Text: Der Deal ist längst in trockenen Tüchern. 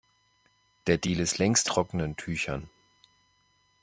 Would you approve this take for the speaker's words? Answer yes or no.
no